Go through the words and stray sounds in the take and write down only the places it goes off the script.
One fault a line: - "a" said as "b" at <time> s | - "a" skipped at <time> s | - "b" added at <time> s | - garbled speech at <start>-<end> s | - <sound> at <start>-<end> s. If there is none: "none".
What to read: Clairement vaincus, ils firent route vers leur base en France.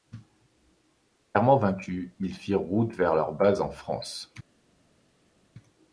none